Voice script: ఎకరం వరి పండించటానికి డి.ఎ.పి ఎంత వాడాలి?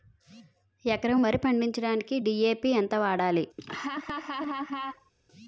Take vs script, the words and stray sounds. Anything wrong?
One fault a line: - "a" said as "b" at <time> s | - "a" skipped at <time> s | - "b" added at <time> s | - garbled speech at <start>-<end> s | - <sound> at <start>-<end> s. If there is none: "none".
- laugh at 3.6-5.1 s